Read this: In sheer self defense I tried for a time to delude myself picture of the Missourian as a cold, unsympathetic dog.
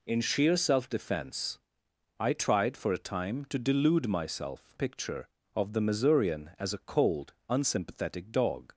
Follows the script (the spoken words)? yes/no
yes